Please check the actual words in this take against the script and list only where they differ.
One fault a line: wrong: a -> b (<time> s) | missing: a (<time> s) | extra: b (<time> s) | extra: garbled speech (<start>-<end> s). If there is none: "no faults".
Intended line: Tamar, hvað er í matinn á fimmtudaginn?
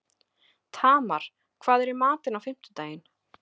no faults